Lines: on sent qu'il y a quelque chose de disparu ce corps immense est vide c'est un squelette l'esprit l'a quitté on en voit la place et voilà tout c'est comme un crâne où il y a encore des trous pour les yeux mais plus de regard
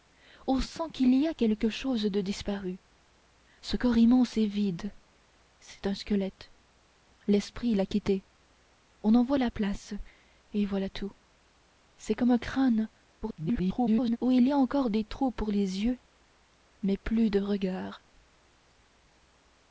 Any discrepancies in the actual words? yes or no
yes